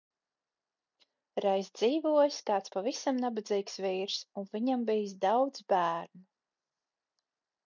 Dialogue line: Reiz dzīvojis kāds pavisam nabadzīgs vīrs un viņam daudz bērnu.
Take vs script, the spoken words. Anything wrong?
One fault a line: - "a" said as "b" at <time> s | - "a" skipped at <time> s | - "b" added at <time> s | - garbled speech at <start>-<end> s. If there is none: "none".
- "bijis" added at 4.9 s